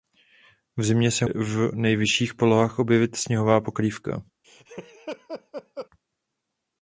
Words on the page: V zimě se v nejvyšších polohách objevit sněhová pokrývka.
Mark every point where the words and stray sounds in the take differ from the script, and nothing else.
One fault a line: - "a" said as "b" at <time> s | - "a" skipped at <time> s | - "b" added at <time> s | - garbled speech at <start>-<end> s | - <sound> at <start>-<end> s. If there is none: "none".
- laugh at 4.4-5.9 s